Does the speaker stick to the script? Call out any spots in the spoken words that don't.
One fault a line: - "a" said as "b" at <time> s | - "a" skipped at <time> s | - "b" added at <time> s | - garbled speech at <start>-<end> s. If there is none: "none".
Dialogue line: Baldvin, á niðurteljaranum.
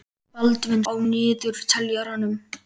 none